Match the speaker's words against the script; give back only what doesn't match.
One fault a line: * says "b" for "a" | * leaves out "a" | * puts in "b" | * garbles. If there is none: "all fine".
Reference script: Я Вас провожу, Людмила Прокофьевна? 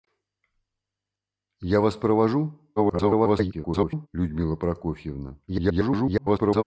* garbles
* garbles